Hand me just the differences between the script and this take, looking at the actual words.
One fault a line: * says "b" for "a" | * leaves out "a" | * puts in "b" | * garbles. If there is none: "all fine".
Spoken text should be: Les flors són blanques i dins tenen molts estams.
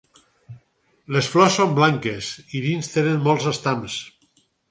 all fine